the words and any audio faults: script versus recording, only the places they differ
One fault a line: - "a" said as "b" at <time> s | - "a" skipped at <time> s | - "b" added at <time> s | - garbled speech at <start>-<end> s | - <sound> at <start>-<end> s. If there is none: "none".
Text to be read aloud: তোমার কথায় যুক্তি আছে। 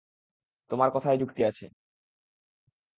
none